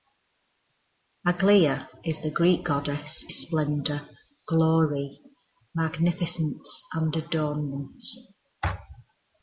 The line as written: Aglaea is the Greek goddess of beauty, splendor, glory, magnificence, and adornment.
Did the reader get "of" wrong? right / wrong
wrong